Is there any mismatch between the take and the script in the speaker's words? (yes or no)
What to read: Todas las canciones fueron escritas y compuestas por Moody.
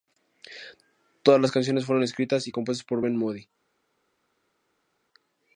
yes